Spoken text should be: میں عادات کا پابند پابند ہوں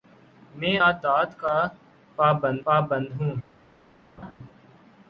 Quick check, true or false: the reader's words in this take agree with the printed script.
true